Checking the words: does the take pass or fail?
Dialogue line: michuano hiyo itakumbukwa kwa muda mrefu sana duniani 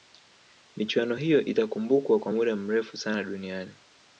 pass